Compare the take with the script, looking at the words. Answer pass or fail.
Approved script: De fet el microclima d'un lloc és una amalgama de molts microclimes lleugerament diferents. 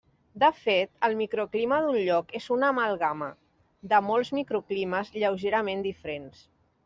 pass